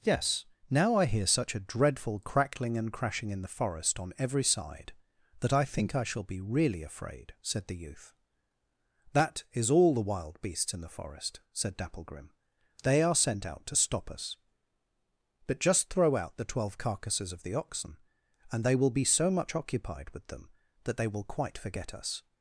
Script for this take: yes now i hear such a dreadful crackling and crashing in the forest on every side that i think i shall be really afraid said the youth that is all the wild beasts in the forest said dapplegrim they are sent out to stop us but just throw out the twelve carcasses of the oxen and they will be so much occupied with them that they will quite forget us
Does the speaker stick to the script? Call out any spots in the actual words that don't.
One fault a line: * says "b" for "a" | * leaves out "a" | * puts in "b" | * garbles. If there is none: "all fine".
all fine